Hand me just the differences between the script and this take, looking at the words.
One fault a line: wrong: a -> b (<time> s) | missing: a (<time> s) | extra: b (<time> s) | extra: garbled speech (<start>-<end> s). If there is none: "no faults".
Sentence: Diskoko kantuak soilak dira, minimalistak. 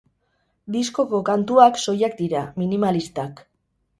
no faults